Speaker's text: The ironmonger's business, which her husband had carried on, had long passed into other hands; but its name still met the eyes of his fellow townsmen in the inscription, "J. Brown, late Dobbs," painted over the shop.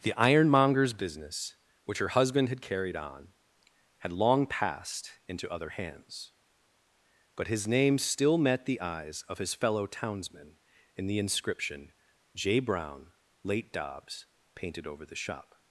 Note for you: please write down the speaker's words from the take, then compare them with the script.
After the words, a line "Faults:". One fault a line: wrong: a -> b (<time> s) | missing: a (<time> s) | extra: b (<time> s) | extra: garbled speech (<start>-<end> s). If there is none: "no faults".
The ironmonger's business, which her husband had carried on, had long passed into other hands; but his name still met the eyes of his fellow townsmen in the inscription, "J. Brown, late Dobbs," painted over the shop.
Faults:
wrong: its -> his (7.5 s)